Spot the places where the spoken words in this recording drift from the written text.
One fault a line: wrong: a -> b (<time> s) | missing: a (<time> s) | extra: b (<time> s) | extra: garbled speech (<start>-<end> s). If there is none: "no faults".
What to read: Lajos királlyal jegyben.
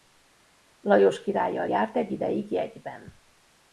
extra: járt egy ideig (1.7 s)